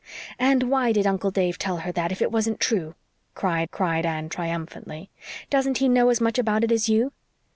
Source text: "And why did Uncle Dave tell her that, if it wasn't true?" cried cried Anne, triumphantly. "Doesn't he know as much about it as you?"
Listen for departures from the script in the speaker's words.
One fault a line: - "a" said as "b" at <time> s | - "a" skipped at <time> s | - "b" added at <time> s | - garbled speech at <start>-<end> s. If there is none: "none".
none